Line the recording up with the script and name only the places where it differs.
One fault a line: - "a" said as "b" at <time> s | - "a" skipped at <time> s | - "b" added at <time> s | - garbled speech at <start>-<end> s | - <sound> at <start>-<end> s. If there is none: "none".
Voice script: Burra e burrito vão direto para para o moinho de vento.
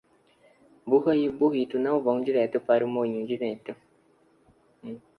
- "não" added at 1.8 s
- "para" skipped at 2.8 s